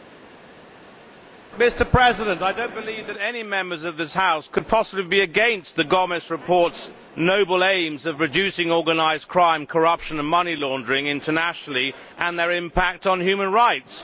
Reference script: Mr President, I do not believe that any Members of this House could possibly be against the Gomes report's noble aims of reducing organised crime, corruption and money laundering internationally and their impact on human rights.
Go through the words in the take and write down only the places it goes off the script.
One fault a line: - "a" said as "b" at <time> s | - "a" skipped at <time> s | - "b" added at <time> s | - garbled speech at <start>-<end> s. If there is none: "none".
none